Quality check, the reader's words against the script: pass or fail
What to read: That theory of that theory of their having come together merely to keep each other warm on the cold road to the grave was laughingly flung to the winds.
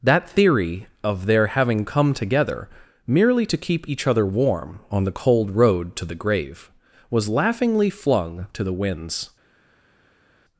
fail